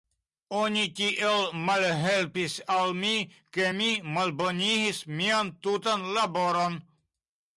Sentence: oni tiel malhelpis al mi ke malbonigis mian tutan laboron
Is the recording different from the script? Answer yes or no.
yes